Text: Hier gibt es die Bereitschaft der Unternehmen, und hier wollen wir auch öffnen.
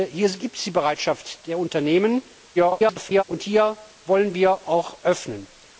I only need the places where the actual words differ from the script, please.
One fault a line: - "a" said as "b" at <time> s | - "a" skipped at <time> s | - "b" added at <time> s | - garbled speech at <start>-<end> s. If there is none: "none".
- garbled speech at 2.6-3.2 s